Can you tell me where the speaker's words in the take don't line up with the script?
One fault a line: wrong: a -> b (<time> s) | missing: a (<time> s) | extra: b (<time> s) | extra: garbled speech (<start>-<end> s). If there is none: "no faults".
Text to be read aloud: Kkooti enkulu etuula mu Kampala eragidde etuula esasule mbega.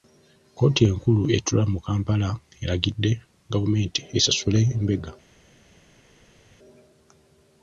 wrong: etuula -> gavumenti (3.5 s)